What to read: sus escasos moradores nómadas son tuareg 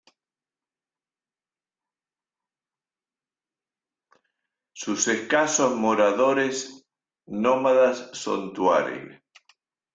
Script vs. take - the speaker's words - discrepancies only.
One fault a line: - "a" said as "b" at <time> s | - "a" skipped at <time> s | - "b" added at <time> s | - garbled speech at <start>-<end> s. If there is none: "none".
none